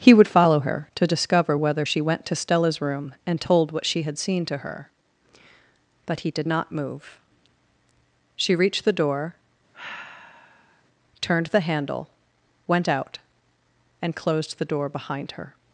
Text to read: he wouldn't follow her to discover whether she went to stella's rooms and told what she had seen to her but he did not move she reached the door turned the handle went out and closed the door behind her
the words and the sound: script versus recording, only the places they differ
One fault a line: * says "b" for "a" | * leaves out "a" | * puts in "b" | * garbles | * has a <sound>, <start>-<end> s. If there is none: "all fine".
* says "would" for "wouldn't"
* says "room" for "rooms"
* has a sigh, 9.7-10.8 s